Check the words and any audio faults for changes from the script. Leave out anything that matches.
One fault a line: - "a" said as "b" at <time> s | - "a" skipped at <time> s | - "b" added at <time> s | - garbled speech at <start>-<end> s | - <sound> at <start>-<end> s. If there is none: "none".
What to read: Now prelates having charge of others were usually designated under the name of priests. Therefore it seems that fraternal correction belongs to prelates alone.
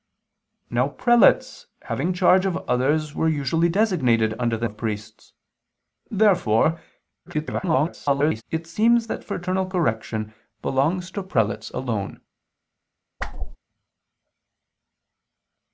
- "name" skipped at 4.7 s
- garbled speech at 7.3-8.4 s
- whoosh at 13.2-13.6 s